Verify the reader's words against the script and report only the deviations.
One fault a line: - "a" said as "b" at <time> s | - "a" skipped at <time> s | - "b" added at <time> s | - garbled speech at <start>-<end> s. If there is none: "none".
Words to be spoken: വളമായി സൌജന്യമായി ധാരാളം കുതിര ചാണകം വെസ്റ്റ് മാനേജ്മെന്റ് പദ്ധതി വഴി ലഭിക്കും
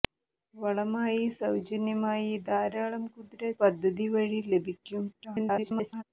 - "ചാണകം വെസ്റ്റ് മാനേജ്മെന്റ്" skipped at 3.5 s
- garbled speech at 5.1-6.0 s